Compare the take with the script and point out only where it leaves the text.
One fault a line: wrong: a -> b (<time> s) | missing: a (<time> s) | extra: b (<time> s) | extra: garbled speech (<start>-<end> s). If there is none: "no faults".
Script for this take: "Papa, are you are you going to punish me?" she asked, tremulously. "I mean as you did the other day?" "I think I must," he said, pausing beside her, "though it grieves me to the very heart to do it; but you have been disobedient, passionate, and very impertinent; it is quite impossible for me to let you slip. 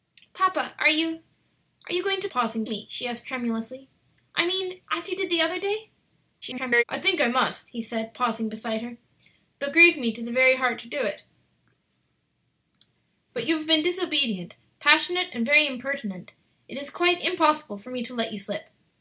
wrong: punish -> pausing (2.3 s)
extra: garbled speech (6.4-6.8 s)